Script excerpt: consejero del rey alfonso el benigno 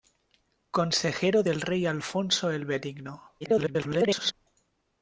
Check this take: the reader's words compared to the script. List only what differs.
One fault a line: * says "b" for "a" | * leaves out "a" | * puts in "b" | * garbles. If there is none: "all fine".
* garbles